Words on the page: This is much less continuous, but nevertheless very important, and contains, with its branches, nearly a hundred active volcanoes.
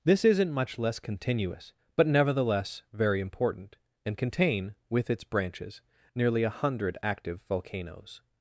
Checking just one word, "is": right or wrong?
wrong